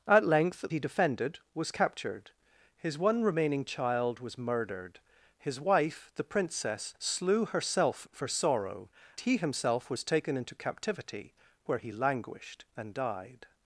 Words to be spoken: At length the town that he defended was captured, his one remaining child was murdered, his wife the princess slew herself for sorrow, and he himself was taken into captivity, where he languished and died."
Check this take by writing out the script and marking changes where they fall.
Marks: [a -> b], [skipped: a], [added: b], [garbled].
At length [skipped: the town that] he defended was captured, his one remaining child was murdered, his wife the princess slew herself for sorrow, [skipped: and] he himself was taken into captivity, where he languished and died."